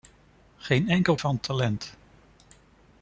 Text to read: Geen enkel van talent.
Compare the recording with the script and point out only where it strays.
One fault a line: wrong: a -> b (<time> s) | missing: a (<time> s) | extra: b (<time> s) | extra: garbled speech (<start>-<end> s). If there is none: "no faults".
no faults